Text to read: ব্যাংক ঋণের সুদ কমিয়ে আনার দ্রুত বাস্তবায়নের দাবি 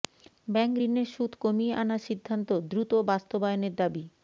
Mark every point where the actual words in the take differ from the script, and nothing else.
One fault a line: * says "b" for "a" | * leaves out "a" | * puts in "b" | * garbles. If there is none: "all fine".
* puts in "সিদ্ধান্ত"